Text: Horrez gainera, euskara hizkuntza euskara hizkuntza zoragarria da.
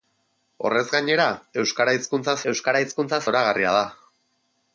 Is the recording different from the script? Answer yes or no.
no